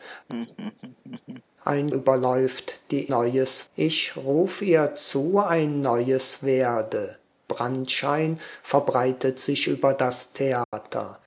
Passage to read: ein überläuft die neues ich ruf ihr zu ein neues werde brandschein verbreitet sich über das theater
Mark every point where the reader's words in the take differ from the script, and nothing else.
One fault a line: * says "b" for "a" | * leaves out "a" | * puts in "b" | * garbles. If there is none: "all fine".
all fine